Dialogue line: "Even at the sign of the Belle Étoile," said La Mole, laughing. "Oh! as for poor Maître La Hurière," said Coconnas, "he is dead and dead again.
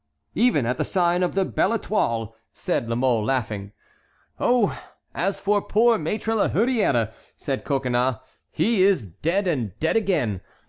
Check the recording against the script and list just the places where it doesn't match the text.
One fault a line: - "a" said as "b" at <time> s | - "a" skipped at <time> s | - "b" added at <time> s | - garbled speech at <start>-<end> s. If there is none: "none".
none